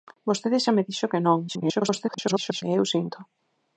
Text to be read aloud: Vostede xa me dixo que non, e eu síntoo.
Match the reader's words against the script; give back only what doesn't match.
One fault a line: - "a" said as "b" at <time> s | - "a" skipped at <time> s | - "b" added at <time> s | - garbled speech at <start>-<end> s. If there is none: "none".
- garbled speech at 1.5-2.6 s